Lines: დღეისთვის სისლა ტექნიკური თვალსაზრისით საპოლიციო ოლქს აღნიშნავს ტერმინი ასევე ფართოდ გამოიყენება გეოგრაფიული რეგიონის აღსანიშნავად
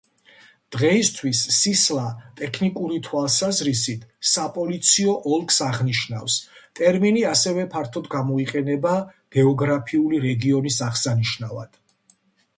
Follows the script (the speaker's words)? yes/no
yes